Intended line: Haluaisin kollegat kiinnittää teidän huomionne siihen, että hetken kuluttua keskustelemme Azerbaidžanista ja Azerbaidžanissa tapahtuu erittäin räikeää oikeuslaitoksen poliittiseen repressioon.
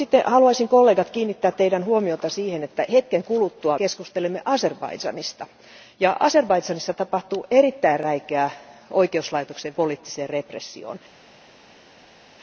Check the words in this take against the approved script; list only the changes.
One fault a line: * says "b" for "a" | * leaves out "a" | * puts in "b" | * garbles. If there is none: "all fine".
all fine